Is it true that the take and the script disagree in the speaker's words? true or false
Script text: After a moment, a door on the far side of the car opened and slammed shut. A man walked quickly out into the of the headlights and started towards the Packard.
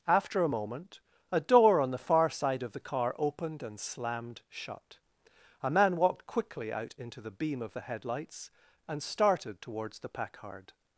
true